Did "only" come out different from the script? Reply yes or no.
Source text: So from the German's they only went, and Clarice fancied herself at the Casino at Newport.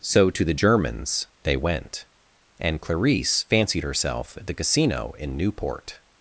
yes